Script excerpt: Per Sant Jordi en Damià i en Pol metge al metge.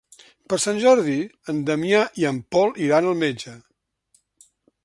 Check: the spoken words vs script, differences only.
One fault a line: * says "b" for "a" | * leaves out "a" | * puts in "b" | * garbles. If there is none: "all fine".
* says "iran" for "metge"